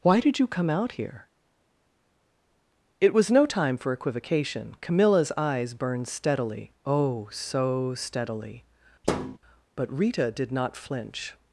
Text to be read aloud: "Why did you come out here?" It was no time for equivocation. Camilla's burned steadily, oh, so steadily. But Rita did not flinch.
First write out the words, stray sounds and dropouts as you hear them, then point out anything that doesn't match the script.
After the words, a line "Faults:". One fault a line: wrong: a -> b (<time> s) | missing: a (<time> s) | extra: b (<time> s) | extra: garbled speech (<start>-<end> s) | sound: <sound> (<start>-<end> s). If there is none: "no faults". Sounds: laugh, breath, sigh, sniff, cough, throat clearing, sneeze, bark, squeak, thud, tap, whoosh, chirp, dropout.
"Why did you come out here?" It was no time for equivocation. Camilla's eyes burned steadily, oh, so steadily. But Rita did not flinch.
Faults:
extra: eyes (5.4 s)
sound: thud (9.0-9.4 s)